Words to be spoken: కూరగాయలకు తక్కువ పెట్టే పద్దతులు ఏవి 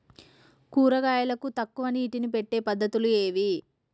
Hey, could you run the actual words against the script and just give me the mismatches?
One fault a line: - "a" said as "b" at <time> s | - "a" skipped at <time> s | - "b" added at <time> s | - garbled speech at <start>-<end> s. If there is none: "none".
- "నీటిని" added at 1.9 s